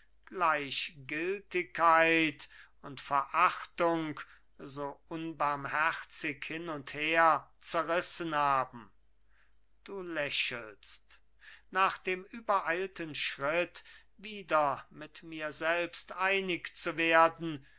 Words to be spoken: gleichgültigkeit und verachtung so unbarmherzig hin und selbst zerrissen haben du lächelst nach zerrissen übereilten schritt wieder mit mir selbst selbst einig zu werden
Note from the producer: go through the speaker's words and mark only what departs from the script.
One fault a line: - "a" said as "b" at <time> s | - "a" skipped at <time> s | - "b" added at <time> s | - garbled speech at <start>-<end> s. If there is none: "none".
- "selbst" said as "her" at 6.9 s
- "zerrissen" said as "dem" at 12.0 s
- "selbst" skipped at 16.1 s